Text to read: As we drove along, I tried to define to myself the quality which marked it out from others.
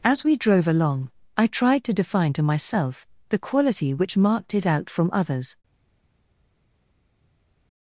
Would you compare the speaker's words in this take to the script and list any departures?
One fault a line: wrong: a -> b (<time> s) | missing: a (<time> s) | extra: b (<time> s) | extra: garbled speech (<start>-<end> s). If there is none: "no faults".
no faults